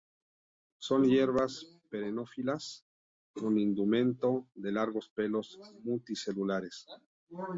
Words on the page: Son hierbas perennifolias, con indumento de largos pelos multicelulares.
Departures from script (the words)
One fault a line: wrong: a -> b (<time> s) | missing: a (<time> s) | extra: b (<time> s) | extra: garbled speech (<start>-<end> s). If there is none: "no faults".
no faults